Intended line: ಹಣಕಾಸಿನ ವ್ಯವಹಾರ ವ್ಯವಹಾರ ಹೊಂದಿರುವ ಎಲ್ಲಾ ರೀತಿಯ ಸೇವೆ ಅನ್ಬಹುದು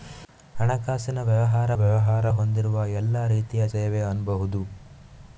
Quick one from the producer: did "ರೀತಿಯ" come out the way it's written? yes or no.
yes